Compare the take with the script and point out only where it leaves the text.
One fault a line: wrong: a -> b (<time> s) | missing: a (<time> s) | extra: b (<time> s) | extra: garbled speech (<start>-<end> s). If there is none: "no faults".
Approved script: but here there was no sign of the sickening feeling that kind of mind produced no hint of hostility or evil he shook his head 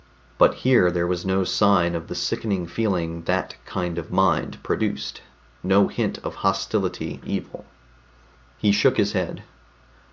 missing: or (7.2 s)